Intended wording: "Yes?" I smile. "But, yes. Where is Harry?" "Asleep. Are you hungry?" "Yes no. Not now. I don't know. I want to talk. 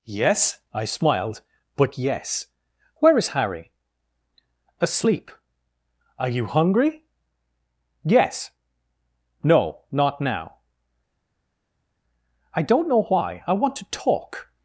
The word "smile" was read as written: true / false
false